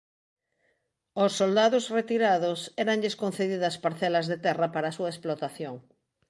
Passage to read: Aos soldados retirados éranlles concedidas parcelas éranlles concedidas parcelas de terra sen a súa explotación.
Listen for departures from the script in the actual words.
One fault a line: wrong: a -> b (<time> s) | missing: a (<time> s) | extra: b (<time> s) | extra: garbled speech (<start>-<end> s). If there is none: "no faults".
missing: éranlles concedidas parcelas (4.3 s)
wrong: sen -> para (4.7 s)